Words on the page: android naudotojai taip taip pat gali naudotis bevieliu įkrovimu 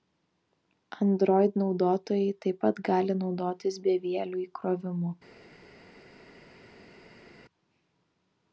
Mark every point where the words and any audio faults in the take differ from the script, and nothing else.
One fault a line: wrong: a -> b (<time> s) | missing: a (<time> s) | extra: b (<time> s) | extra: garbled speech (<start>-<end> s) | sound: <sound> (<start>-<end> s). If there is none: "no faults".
missing: taip (2.6 s)